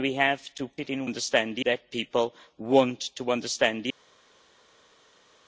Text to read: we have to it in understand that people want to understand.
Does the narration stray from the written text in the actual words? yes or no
no